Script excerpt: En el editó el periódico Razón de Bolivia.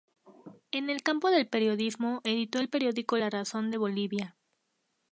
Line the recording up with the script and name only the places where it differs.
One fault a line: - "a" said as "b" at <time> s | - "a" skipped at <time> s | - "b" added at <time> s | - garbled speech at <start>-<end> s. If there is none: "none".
- "campo del periodismo" added at 1.0 s
- "La" added at 3.2 s